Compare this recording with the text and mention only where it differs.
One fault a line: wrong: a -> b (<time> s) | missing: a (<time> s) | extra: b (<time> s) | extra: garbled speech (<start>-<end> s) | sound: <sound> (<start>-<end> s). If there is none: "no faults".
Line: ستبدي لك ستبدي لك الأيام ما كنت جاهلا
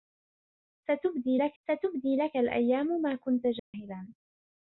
sound: dropout (3.6-3.7 s)